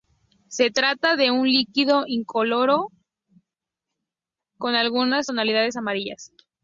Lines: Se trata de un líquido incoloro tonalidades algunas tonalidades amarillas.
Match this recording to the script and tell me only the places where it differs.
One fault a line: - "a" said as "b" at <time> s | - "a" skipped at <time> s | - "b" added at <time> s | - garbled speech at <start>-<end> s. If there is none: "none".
- "tonalidades" said as "con" at 4.6 s